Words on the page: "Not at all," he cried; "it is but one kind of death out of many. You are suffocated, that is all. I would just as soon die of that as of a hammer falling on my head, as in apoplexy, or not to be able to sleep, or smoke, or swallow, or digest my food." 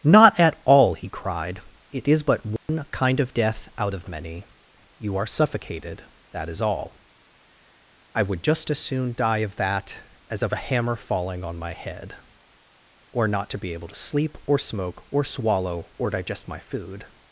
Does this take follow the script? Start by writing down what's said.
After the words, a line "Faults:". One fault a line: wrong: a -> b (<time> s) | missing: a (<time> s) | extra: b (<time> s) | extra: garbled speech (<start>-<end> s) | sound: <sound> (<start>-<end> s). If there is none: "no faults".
"Not at all," he cried; "it is but one kind of death out of many. You are suffocated, that is all. I would just as soon die of that as of a hammer falling on my head, or not to be able to sleep, or smoke, or swallow, or digest my food."
Faults:
sound: dropout (2.6-2.7 s)
missing: as in apoplexy (12.1 s)